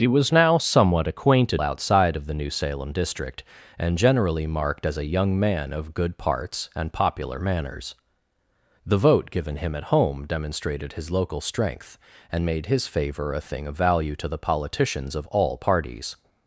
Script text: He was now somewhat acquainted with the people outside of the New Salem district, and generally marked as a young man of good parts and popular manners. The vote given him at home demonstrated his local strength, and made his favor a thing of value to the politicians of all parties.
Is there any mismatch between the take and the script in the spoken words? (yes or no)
yes